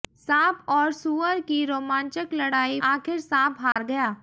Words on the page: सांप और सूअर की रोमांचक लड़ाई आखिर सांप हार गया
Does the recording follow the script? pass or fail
pass